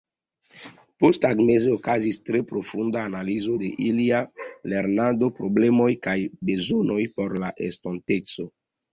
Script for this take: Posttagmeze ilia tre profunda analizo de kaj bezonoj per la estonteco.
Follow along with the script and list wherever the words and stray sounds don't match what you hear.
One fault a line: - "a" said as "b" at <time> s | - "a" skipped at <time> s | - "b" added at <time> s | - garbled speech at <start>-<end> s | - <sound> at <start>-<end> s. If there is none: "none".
- "ilia" said as "okazis" at 1.7 s
- "ilia lernado problemoj" added at 3.8 s
- "per" said as "por" at 7.2 s